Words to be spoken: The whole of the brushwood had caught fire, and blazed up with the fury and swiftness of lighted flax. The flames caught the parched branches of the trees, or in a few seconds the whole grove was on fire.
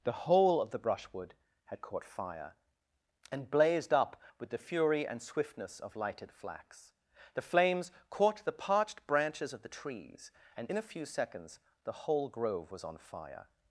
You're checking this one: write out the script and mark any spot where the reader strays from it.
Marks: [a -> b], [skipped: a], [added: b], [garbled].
The whole of the brushwood had caught fire, and blazed up with the fury and swiftness of lighted flax. The flames caught the parched branches of the trees, [or -> and] in a few seconds the whole grove was on fire.